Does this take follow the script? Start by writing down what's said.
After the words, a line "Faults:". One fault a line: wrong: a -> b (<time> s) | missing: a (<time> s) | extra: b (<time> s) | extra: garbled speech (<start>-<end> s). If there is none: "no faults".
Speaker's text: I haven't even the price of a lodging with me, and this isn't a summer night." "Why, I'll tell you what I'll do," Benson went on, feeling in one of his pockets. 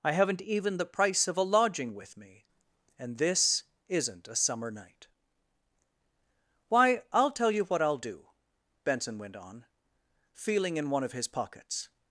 I haven't even the price of a lodging with me, and this isn't a summer night." "Why, I'll tell you what I'll do," Benson went on, feeling in one of his pockets.
Faults:
no faults